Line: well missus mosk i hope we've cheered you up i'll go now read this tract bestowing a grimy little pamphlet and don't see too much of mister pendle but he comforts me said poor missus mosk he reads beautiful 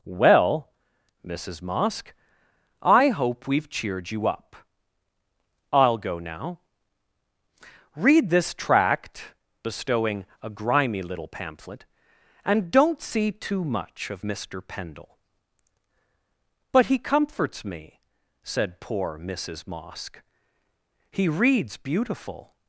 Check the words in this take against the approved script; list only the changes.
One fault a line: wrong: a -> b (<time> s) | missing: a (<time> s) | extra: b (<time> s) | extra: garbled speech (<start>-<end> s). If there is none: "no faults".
no faults